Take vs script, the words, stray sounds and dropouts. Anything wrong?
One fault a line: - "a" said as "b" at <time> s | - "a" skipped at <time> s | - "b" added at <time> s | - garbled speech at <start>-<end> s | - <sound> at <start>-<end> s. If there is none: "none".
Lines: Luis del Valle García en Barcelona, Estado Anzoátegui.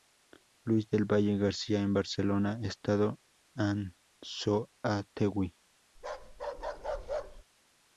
- bark at 6.0-7.4 s